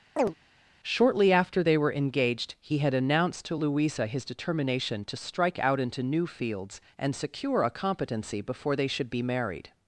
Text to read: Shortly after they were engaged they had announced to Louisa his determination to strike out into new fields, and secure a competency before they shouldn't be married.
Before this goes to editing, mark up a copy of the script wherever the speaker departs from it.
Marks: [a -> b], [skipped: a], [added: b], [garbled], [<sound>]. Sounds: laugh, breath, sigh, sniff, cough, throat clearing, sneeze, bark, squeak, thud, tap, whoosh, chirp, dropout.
[chirp] Shortly after they were engaged [they -> he] had announced to Louisa his determination to strike out into new fields, and secure a competency before they [shouldn't -> should] be married.